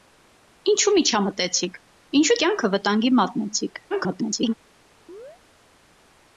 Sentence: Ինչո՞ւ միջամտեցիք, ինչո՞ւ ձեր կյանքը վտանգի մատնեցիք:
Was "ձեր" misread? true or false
true